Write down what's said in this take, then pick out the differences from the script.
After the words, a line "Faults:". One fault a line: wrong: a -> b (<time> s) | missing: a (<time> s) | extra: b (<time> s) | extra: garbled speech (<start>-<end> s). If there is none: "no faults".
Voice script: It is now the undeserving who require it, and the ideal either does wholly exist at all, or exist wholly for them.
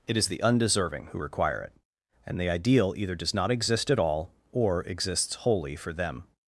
It is the undeserving who require it, and the ideal either does not exist at all, or exists wholly for them.
Faults:
missing: now (0.3 s)
wrong: wholly -> not (3.3 s)
wrong: exist -> exists (4.8 s)